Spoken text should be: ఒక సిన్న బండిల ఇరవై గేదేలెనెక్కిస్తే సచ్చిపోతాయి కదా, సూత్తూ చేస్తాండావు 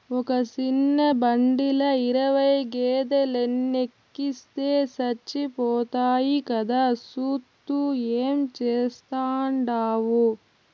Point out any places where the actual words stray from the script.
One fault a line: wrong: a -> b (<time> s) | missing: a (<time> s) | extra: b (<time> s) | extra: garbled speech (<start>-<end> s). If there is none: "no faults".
extra: ఏం (8.2 s)